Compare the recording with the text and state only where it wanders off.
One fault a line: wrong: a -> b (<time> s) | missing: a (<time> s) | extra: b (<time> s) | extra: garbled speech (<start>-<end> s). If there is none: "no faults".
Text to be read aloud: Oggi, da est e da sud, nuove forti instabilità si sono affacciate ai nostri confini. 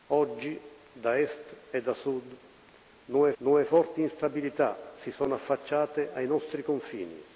extra: nuove (3.4 s)